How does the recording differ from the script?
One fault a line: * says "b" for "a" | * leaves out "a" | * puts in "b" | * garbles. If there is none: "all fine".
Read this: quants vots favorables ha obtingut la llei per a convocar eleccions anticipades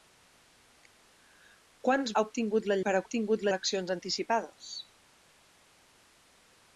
* leaves out "vots favorables"
* leaves out "llei"
* says "obtingut" for "convocar"